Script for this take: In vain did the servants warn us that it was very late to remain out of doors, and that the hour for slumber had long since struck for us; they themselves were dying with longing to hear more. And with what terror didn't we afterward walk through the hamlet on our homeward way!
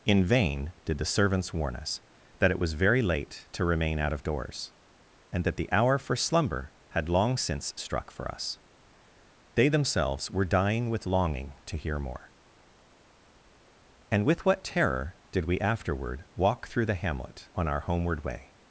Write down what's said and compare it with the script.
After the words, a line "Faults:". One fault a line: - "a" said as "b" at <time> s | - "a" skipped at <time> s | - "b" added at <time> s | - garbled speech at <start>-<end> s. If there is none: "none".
In vain did the servants warn us that it was very late to remain out of doors, and that the hour for slumber had long since struck for us; they themselves were dying with longing to hear more. And with what terror did we afterward walk through the hamlet on our homeward way!
Faults:
- "didn't" said as "did" at 15.3 s